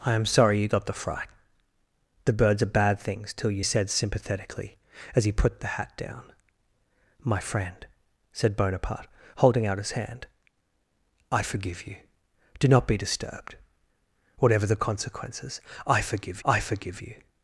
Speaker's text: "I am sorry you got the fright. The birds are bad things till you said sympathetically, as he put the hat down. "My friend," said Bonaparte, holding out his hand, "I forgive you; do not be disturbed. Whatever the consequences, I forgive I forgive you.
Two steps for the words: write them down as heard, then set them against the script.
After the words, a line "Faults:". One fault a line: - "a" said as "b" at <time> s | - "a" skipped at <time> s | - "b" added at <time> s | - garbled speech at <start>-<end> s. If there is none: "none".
"I am sorry you got the fright. The birds are bad things till you said sympathetically, as he put the hat down. "My friend," said Bonaparte, holding out his hand, "I forgive you; do not be disturbed. Whatever the consequences, I forgive I forgive you.
Faults:
none